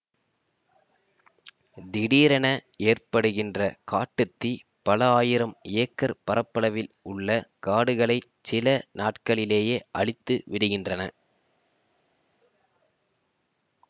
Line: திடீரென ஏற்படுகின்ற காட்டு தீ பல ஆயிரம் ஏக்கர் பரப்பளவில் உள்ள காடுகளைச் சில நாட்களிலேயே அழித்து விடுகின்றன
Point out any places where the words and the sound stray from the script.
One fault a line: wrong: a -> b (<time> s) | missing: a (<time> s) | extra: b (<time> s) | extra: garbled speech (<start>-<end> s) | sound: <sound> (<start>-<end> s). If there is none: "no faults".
no faults